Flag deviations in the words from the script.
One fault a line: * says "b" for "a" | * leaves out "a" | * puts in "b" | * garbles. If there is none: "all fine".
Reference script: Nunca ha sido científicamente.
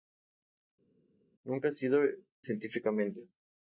all fine